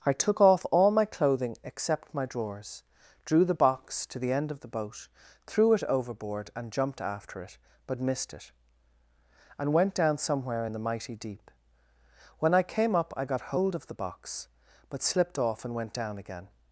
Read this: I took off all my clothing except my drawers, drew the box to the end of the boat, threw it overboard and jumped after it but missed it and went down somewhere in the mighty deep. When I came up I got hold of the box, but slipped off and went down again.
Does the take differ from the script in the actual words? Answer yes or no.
no